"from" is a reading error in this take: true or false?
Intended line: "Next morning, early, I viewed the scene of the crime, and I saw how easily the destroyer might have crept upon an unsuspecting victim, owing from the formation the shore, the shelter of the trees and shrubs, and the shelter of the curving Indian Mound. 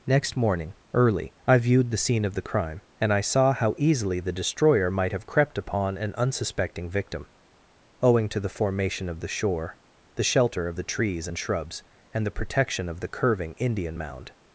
true